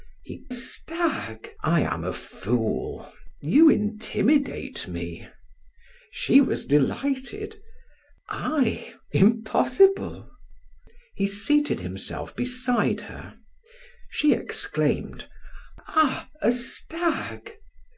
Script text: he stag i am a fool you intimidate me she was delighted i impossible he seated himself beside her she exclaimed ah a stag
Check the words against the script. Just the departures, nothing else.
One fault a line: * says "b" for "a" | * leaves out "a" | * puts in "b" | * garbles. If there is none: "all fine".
all fine